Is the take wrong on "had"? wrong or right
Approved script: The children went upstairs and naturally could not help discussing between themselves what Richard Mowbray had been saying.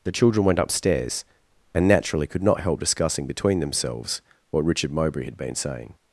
right